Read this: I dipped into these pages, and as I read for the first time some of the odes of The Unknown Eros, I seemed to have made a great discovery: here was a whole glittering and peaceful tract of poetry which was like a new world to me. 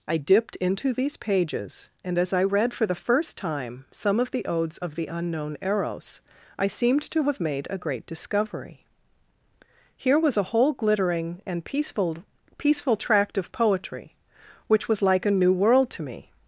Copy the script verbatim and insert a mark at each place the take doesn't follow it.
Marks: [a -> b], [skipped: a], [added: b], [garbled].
I dipped into these pages, and as I read for the first time some of the odes of The Unknown Eros, I seemed to have made a great discovery: here was a whole glittering and peaceful [added: peaceful] tract of poetry which was like a new world to me.